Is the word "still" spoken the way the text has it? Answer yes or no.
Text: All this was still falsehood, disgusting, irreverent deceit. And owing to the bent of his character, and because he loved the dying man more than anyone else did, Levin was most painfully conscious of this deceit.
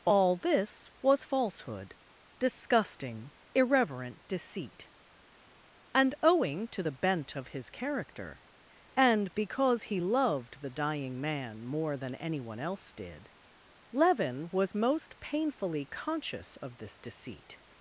no